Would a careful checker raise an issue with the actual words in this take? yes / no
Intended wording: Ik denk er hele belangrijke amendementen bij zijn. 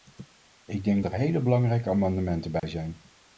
no